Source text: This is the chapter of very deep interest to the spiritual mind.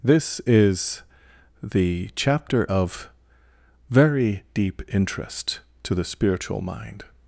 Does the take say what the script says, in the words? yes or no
yes